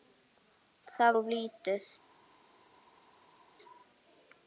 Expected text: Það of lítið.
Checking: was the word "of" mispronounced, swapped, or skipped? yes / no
no